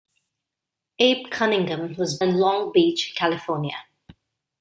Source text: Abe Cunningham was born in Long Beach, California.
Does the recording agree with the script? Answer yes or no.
no